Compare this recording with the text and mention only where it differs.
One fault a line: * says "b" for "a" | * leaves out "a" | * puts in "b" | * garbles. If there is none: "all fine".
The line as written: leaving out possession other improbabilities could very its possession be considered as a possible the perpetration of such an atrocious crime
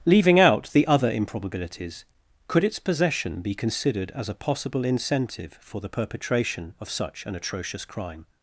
* says "the" for "possession"
* leaves out "very"
* puts in "incentive for"